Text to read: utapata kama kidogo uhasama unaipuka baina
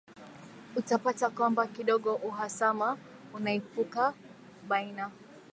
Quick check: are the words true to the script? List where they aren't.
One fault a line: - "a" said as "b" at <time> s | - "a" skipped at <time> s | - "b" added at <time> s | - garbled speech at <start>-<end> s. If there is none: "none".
- "kama" said as "kwamba" at 1.3 s